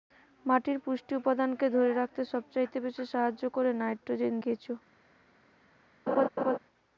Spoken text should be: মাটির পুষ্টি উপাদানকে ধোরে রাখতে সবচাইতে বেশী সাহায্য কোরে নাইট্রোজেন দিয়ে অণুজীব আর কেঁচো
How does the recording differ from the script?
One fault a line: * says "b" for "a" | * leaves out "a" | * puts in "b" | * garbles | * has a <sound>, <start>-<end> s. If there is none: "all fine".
* leaves out "দিয়ে অণুজীব আর"
* has a laugh, 6.1-6.6 s